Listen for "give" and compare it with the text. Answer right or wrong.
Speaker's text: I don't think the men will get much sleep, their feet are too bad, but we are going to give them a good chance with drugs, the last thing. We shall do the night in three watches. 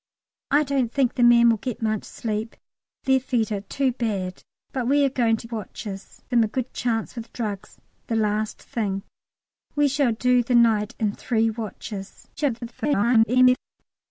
wrong